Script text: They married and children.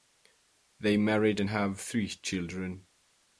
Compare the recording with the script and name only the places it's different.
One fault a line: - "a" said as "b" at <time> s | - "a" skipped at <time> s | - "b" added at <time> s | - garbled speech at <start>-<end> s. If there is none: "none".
- "have three" added at 1.5 s